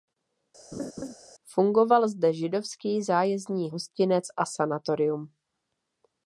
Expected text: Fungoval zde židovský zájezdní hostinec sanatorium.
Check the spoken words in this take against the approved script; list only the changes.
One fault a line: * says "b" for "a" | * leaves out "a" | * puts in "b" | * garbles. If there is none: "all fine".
* puts in "a"